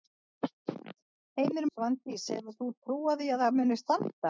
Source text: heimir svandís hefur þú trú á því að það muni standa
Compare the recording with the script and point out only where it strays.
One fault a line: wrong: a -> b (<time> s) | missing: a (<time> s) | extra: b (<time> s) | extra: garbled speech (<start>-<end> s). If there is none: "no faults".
no faults